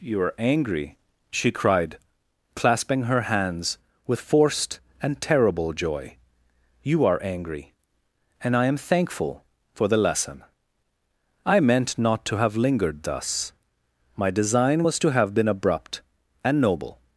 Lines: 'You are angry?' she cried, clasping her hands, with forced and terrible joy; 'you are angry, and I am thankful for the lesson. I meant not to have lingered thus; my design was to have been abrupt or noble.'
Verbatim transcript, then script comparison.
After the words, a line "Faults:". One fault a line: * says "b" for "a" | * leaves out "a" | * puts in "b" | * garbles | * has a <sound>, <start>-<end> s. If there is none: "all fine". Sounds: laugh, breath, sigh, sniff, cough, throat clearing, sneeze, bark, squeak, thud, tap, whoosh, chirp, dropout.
'You are angry?' she cried, clasping her hands, with forced and terrible joy; 'you are angry, and I am thankful for the lesson. I meant not to have lingered thus; my design was to have been abrupt and noble.'
Faults:
* says "and" for "or"